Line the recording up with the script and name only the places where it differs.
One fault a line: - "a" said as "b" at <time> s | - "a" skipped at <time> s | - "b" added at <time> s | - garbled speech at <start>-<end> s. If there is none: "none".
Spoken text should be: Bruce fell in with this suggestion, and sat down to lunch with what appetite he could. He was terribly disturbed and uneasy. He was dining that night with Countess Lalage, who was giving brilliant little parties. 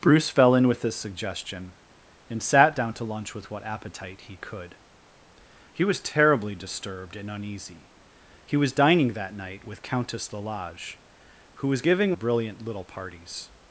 none